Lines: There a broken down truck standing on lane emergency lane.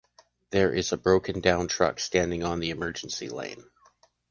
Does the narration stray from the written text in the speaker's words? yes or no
yes